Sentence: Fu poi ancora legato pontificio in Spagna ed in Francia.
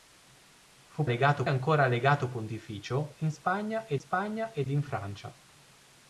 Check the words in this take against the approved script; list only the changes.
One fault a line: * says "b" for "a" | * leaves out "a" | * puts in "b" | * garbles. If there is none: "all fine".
* says "legato" for "poi"
* puts in "Spagna ed"